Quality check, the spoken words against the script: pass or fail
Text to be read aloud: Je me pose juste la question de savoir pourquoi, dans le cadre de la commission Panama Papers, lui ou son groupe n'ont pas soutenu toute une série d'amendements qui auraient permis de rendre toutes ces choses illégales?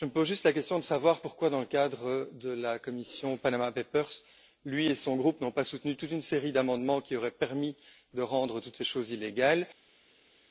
fail